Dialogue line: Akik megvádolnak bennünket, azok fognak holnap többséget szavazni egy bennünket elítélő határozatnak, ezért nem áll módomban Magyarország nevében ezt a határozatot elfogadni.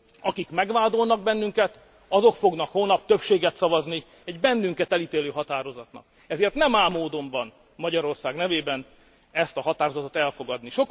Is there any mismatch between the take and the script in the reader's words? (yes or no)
no